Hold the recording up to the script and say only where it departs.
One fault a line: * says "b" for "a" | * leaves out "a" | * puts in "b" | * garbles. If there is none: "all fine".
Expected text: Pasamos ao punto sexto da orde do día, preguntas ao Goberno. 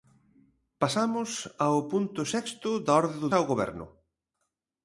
* leaves out "día preguntas"